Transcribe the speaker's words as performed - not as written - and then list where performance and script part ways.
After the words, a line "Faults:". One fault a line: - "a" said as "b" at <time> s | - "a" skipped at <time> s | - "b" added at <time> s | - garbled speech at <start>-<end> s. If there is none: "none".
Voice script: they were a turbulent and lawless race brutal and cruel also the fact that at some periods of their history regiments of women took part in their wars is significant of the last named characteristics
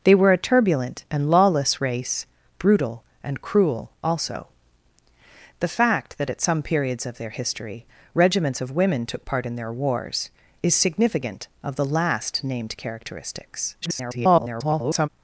they were a turbulent and lawless race brutal and cruel also the fact that at some periods of their history regiments of women took part in their wars is significant of the last named characteristics [garbled]
Faults:
- garbled speech at 13.8-15.1 s